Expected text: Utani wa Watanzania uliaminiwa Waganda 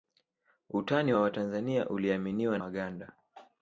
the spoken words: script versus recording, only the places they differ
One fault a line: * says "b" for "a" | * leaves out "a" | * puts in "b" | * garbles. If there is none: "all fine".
all fine